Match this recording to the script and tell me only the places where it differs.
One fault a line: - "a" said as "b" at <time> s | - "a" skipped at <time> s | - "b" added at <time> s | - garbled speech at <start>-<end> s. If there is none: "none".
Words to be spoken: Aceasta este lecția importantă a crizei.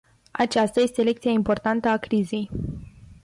none